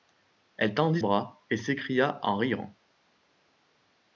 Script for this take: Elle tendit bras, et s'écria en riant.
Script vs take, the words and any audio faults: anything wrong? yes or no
no